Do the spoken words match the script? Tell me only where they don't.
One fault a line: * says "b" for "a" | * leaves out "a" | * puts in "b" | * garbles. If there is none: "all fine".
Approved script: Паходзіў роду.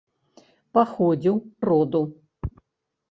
all fine